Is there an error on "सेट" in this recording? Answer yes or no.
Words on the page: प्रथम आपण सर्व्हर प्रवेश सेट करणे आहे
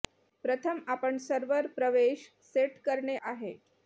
no